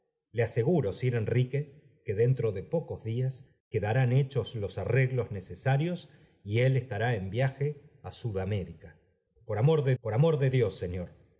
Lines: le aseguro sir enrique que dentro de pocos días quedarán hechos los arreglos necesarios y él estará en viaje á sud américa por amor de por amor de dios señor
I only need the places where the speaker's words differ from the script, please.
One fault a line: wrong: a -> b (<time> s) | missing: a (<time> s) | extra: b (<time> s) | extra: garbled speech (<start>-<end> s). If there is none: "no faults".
no faults